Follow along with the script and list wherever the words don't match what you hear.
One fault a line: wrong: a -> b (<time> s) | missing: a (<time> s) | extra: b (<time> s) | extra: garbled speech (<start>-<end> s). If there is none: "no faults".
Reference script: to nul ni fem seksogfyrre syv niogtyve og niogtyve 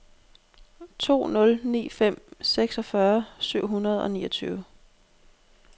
wrong: niogtyve -> hundrede (3.7 s)